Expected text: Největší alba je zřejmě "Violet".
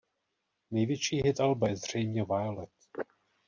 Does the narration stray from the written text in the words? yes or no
yes